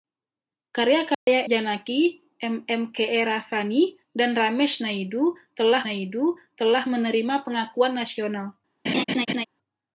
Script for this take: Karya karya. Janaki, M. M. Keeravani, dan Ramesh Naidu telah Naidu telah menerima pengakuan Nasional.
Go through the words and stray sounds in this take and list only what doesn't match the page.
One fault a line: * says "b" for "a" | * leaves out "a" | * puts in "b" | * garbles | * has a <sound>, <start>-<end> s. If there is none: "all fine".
* has a dropout, 1.1-1.3 s
* has a laugh, 8.9-9.4 s